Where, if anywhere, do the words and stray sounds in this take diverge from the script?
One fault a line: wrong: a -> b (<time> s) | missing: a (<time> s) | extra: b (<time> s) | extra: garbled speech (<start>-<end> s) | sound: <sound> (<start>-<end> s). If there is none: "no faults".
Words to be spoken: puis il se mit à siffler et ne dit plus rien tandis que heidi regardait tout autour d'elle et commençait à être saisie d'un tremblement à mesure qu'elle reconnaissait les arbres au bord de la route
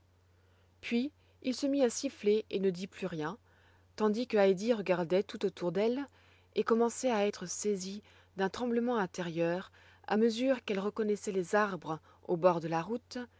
extra: intérieur (9.0 s)